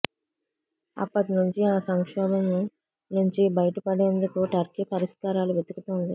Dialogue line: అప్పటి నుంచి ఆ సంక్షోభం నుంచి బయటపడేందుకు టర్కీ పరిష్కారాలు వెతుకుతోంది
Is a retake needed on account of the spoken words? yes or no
no